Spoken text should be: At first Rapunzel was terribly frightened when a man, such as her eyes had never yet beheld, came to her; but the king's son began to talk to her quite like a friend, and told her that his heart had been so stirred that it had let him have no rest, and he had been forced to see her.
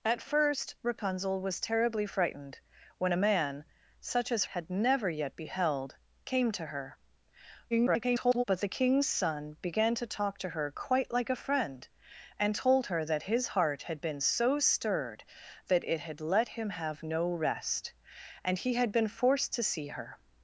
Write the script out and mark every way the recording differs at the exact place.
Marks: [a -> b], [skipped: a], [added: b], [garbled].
At first Rapunzel was terribly frightened when a man, such as [skipped: her eyes] had never yet beheld, came to her; [garbled] but the king's son began to talk to her quite like a friend, and told her that his heart had been so stirred that it had let him have no rest, and he had been forced to see her.